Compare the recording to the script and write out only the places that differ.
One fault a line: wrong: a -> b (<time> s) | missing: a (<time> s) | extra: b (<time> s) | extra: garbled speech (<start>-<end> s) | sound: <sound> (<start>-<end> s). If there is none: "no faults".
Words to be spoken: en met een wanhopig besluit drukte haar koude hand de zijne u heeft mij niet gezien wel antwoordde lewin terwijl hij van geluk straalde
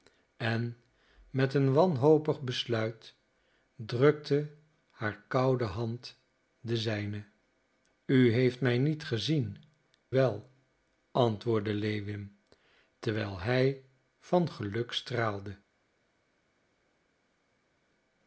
no faults